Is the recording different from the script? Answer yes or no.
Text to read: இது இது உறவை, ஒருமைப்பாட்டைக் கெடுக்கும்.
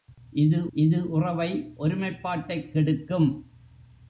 no